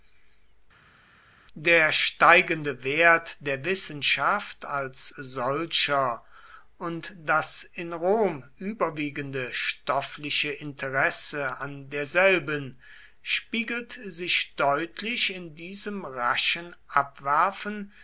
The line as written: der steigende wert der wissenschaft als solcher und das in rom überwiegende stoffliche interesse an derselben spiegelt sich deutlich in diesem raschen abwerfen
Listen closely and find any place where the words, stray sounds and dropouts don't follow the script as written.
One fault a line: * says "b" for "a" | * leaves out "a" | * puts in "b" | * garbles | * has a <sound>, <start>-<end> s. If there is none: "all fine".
all fine